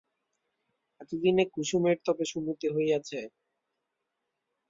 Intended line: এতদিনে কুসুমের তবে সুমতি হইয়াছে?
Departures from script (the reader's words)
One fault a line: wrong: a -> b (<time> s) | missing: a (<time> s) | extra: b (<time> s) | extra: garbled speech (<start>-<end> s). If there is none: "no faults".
no faults